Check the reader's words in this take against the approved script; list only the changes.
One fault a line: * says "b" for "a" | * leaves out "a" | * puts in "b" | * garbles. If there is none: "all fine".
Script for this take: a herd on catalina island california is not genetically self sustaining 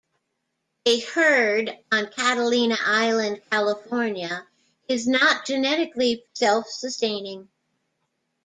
all fine